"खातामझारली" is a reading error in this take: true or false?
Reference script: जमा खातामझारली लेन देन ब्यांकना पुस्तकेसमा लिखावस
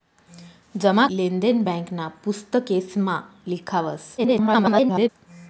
true